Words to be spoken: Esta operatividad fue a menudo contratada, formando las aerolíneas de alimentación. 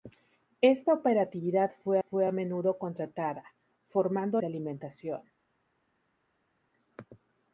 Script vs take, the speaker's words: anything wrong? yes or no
yes